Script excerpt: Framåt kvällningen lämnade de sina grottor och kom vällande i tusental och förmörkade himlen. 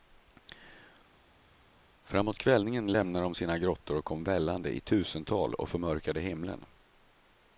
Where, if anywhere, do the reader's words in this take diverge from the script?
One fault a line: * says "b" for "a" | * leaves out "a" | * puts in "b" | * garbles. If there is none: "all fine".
all fine